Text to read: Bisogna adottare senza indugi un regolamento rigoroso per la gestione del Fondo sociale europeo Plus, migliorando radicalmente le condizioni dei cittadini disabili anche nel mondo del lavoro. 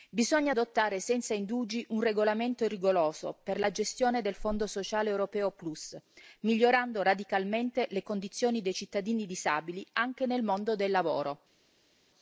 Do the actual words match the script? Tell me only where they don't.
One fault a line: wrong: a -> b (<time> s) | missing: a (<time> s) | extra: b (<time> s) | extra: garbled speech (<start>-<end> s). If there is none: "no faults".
no faults